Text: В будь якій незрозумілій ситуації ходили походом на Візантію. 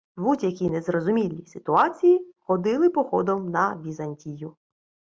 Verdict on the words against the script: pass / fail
pass